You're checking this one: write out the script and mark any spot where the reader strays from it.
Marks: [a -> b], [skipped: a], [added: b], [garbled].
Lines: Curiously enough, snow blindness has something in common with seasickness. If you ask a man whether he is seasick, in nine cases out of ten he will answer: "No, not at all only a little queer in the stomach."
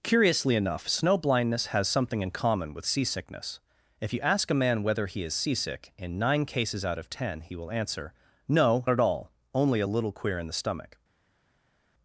Curiously enough, snow blindness has something in common with seasickness. If you ask a man whether he is seasick, in nine cases out of ten he will answer: "No, [skipped: not] at all only a little queer in the stomach."